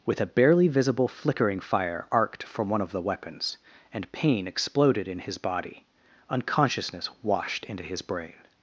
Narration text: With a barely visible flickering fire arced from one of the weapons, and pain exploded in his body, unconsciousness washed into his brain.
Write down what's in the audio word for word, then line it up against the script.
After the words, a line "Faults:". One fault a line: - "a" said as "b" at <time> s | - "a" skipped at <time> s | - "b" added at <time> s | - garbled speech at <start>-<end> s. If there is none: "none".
With a barely visible flickering fire arced from one of the weapons, and pain exploded in his body, unconsciousness washed into his brain.
Faults:
none